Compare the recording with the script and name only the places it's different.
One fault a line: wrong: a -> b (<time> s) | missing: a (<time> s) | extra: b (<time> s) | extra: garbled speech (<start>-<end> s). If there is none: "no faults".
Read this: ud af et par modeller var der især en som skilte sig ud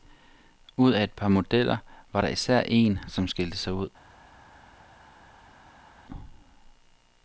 no faults